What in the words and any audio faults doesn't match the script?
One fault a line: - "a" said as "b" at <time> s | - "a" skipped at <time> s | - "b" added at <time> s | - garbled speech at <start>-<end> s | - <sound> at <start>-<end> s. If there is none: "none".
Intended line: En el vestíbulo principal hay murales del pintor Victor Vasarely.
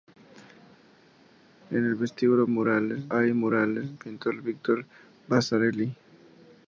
- "principal" said as "murales" at 2.5 s
- "del" skipped at 4.0 s